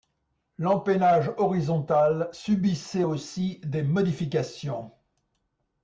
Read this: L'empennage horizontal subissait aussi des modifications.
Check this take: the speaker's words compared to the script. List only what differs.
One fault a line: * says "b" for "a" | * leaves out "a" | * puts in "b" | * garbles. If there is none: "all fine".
all fine